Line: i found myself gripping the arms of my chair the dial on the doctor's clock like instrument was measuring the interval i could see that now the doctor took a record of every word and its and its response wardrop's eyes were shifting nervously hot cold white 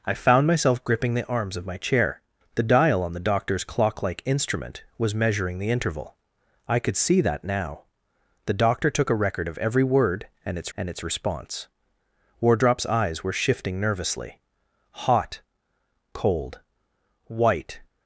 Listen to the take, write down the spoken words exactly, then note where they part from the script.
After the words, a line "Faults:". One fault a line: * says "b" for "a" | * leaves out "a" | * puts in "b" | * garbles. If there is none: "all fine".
i found myself gripping the arms of my chair the dial on the doctor's clock like instrument was measuring the interval i could see that now the doctor took a record of every word and its and its response wardrop's eyes were shifting nervously hot cold white
Faults:
all fine